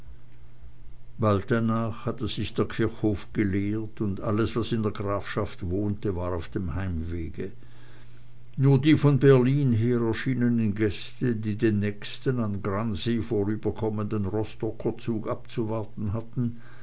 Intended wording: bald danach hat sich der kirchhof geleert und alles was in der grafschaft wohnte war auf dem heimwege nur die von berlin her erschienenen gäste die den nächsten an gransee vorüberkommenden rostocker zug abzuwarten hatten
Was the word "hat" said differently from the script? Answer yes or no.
yes